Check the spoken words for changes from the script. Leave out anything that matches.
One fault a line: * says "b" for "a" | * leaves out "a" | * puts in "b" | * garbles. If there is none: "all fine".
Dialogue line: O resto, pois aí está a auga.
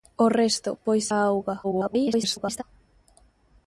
* leaves out "aí está"
* garbles